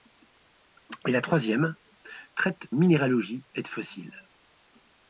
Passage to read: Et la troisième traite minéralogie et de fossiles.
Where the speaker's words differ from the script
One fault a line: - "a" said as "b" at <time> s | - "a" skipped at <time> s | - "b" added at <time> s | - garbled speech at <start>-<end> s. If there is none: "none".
none